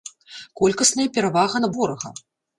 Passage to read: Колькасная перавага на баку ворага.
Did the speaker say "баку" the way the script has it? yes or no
no